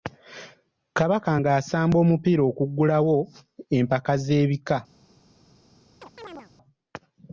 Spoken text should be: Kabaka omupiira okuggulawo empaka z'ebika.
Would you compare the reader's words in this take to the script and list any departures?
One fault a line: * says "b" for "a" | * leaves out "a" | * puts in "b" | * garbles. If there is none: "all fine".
* puts in "ng'asamba"